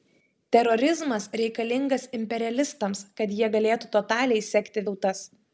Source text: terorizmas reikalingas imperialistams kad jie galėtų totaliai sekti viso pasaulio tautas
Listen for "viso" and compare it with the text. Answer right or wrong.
wrong